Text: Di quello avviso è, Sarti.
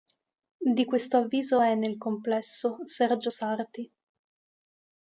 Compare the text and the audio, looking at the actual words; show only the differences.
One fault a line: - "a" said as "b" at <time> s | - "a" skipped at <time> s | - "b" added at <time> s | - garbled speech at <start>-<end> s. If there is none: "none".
- "quello" said as "questo" at 0.8 s
- "nel complesso Sergio" added at 1.7 s